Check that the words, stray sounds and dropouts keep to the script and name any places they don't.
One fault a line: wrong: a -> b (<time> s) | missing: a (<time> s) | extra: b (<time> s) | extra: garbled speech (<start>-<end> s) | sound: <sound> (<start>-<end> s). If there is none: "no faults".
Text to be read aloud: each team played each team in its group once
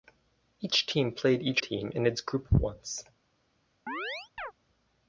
sound: chirp (3.9-4.5 s)